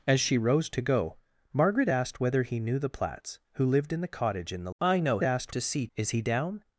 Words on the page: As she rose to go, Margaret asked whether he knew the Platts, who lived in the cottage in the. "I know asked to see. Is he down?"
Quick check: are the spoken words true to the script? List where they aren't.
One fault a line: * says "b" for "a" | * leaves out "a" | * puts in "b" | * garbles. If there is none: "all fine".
all fine